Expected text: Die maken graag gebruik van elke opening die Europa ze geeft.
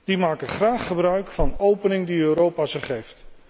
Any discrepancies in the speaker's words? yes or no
yes